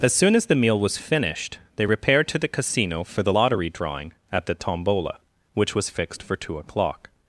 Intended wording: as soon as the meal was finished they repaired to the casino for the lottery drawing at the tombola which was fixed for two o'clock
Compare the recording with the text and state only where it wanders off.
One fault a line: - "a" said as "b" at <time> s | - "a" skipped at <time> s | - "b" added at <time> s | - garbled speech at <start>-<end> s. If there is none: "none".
none